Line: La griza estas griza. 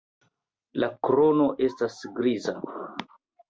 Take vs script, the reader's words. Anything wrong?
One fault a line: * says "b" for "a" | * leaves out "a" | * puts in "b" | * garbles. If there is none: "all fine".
* says "krono" for "griza"